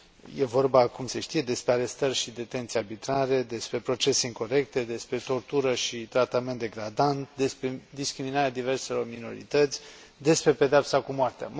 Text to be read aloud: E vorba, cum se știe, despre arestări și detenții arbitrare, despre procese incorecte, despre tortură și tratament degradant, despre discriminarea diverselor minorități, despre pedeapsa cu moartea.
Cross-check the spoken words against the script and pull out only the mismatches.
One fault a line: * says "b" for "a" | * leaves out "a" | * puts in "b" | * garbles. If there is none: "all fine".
all fine